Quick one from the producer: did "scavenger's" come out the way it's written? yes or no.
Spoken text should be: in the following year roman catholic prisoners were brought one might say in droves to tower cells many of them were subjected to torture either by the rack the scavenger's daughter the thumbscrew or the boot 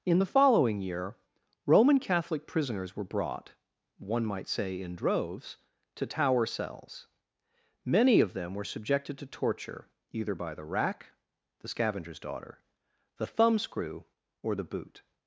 yes